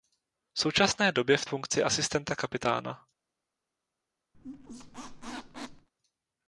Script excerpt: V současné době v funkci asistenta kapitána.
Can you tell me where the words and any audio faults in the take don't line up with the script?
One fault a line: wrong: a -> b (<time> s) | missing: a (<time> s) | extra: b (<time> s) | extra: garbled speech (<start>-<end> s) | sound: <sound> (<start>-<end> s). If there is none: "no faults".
sound: squeak (4.3-5.9 s)